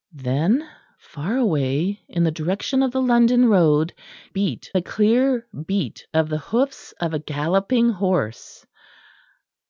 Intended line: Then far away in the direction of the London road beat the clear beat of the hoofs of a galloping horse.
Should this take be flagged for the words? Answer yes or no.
no